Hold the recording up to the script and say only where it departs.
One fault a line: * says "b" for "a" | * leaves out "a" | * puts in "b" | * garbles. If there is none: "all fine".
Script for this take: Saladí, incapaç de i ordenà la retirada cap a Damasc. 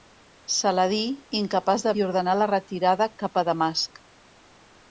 all fine